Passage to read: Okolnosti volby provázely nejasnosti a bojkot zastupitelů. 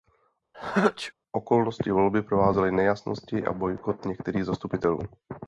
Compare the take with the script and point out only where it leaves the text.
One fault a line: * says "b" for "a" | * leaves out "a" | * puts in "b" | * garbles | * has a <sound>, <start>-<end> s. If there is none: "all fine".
* has a sneeze, 0.5-1.1 s
* puts in "některých"